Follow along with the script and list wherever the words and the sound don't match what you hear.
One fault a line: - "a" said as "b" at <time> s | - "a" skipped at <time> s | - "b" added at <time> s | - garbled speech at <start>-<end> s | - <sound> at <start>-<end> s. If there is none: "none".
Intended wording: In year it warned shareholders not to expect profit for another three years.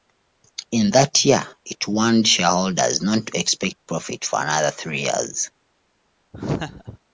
- "that" added at 0.9 s
- laugh at 6.3-7.0 s